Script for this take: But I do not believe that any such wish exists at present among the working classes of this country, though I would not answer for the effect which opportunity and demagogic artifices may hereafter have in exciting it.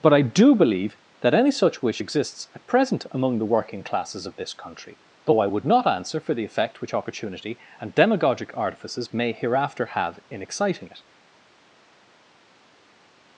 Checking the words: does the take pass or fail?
fail